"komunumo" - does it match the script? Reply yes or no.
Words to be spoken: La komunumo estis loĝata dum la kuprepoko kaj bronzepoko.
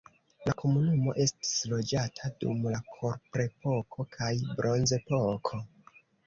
yes